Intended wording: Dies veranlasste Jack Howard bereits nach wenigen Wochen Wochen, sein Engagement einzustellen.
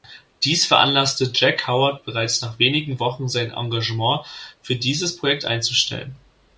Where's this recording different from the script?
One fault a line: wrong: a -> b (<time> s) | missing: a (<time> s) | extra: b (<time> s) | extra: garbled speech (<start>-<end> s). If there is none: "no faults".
missing: Wochen (3.3 s)
extra: für dieses Projekt (4.6 s)